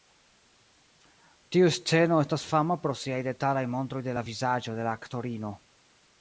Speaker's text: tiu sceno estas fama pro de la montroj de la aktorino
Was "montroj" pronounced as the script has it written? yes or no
no